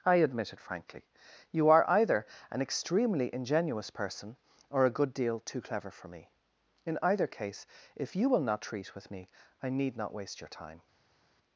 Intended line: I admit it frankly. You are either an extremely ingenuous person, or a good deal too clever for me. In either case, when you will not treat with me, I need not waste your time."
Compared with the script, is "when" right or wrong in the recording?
wrong